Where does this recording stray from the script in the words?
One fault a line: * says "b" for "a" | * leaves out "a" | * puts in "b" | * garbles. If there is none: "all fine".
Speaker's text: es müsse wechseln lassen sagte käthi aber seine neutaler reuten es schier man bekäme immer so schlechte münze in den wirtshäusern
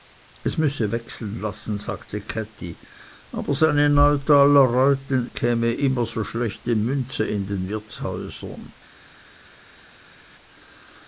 * leaves out "es schier man"